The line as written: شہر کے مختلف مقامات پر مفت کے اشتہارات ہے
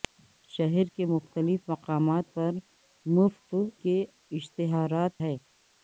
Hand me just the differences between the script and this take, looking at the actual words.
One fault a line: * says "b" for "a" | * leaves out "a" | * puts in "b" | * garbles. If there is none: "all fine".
all fine